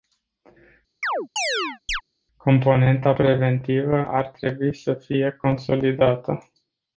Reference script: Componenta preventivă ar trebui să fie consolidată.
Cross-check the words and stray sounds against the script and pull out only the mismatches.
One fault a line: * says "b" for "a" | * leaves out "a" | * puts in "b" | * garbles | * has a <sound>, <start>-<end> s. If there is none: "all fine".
* has a chirp, 1.0-2.0 s